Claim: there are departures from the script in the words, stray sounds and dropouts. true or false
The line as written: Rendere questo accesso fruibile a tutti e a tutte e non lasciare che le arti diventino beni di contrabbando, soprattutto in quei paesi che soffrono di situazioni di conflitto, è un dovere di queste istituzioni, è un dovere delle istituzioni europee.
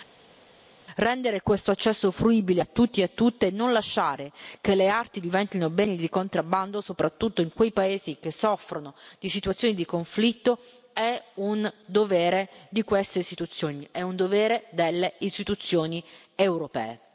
false